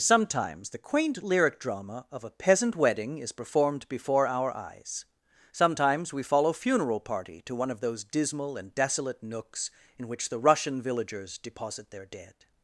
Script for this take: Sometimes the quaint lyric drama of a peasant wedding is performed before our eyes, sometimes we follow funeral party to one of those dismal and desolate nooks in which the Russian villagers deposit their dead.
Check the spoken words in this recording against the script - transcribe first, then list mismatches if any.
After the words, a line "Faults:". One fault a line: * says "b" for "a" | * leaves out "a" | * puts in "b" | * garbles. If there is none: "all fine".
Sometimes the quaint lyric drama of a peasant wedding is performed before our eyes, sometimes we follow funeral party to one of those dismal and desolate nooks in which the Russian villagers deposit their dead.
Faults:
all fine